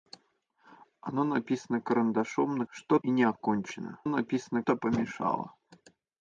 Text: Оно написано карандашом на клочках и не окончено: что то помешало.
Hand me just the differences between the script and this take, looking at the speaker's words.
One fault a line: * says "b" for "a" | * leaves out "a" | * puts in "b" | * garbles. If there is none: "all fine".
* says "что" for "клочках"
* says "написано" for "что"